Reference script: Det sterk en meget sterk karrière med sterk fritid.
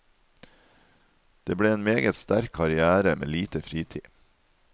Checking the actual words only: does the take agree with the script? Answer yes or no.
no